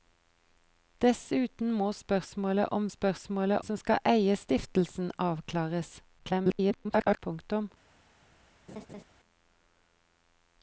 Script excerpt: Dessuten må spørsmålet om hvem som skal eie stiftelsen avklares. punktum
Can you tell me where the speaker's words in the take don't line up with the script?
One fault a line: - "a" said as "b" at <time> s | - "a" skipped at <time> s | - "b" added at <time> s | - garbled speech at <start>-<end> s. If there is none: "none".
- "hvem" said as "spørsmålet" at 2.9 s
- garbled speech at 6.2-7.2 s